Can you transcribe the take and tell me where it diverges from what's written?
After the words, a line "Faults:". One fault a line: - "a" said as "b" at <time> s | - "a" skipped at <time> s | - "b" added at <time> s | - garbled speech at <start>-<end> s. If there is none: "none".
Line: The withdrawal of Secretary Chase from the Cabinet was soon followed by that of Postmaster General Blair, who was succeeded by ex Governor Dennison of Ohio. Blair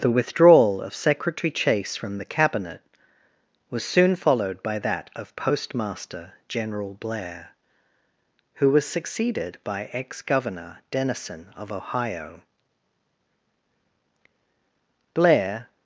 The withdrawal of Secretary Chase from the Cabinet was soon followed by that of Postmaster General Blair, who was succeeded by ex Governor Dennison of Ohio. Blair
Faults:
none